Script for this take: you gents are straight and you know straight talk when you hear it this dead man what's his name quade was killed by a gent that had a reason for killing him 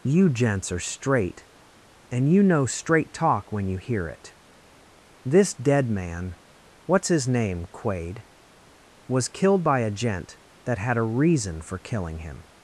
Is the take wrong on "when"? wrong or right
right